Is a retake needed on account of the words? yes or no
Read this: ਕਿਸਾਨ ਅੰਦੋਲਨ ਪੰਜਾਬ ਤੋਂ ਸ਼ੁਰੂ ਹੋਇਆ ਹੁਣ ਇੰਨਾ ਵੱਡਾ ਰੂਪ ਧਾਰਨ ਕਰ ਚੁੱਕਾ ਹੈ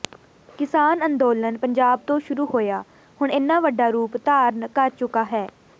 no